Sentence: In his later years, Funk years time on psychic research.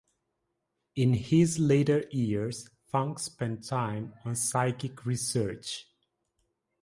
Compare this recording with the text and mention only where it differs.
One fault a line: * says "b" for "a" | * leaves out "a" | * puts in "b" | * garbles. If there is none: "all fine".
* says "spent" for "years"